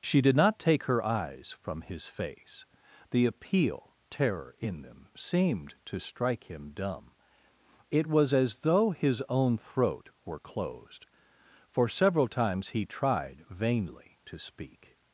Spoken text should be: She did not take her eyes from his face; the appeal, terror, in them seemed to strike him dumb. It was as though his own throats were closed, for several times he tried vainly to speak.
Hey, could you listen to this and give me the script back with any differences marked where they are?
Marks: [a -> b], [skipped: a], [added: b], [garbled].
She did not take her eyes from his face; the appeal, terror, in them seemed to strike him dumb. It was as though his own [throats -> throat] were closed, for several times he tried vainly to speak.